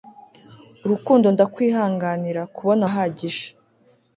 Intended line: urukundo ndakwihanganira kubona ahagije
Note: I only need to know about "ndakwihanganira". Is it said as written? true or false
true